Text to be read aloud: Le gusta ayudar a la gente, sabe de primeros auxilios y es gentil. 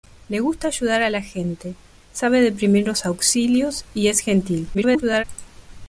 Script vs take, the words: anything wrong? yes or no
yes